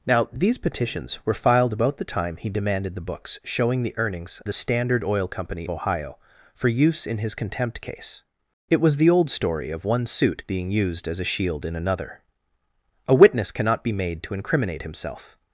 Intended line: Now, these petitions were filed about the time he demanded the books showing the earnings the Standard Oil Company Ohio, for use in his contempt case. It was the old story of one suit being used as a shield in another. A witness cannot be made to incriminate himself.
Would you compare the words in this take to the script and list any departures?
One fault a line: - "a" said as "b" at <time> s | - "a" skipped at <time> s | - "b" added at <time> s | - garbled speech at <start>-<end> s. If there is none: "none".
none